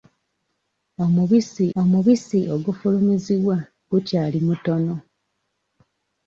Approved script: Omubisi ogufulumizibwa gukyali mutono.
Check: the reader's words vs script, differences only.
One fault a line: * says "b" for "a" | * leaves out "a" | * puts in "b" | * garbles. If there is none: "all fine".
* puts in "omubisi"